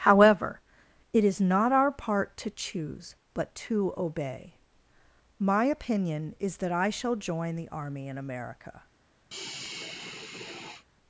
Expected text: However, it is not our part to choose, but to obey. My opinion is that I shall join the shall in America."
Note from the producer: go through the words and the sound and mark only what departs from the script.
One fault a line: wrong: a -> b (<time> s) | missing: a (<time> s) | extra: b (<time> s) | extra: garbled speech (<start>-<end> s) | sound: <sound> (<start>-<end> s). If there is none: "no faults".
wrong: shall -> army (7.7 s)
sound: sigh (9.3-10.9 s)